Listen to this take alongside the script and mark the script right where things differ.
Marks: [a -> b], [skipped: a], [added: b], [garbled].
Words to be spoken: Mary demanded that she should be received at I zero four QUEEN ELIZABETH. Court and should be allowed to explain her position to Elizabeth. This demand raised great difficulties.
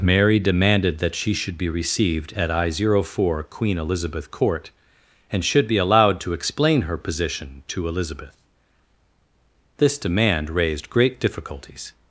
Mary demanded that she should be received at I zero four QUEEN ELIZABETH. Court and should be allowed to explain her position to Elizabeth. This demand raised great difficulties.